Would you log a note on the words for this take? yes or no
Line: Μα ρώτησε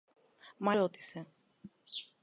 no